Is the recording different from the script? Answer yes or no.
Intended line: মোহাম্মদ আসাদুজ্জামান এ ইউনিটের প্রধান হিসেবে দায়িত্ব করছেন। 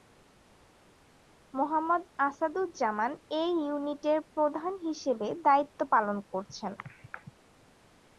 yes